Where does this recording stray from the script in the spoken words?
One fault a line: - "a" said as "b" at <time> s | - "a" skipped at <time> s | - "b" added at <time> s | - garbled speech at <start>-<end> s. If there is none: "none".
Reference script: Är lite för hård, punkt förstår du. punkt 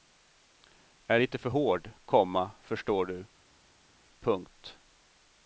- "punkt" said as "komma" at 2.1 s